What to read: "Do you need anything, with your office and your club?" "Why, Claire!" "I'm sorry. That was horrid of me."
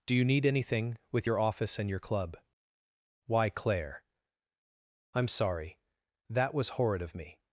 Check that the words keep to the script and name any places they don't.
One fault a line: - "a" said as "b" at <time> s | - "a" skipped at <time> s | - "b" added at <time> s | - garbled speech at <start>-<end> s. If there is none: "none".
none